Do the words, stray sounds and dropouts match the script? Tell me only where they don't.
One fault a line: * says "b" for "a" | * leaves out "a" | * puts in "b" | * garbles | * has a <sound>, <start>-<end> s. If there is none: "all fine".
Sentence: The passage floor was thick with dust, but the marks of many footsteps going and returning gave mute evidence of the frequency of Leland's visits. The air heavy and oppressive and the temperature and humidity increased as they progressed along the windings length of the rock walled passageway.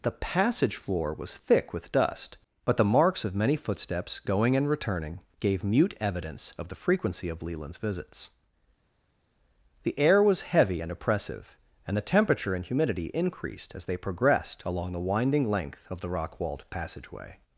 * puts in "was"
* says "winding" for "windings"